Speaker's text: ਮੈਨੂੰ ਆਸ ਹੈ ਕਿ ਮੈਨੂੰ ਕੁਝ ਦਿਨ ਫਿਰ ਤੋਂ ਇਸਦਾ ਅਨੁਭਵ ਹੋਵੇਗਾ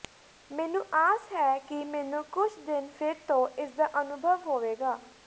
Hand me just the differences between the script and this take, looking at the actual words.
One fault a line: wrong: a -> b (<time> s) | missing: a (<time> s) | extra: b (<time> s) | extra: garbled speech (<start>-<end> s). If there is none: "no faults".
no faults